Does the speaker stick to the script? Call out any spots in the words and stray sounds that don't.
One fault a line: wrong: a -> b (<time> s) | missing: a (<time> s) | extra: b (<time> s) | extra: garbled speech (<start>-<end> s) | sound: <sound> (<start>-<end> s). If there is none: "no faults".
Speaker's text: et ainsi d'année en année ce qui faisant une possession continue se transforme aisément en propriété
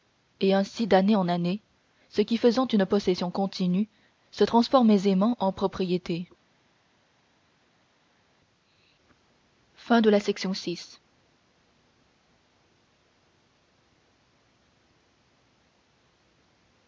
no faults